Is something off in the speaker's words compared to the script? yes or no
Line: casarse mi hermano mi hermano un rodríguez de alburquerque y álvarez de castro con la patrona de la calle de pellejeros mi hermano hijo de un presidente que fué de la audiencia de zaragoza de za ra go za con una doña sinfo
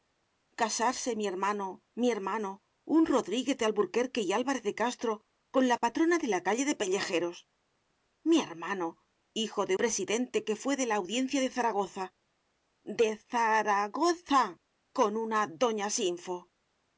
yes